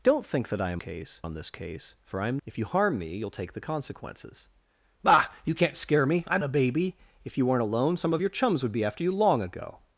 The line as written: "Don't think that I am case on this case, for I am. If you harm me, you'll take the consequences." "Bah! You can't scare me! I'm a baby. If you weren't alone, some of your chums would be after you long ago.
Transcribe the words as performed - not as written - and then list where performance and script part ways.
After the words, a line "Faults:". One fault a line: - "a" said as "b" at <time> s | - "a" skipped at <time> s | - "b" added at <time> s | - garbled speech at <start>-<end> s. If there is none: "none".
"Don't think that I am case on this case, for I am. If you harm me, you'll take the consequences." "Bah! You can't scare me! I'm a baby. If you weren't alone, some of your chums would be after you long ago.
Faults:
none